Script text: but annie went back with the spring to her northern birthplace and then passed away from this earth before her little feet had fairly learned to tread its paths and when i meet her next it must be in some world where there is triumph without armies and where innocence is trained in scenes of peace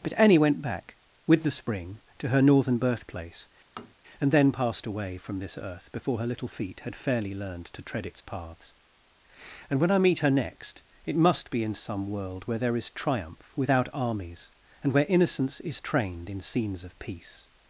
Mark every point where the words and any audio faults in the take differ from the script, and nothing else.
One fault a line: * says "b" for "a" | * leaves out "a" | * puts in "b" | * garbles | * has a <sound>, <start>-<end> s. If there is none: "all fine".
* has a tap, 3.8-4.0 s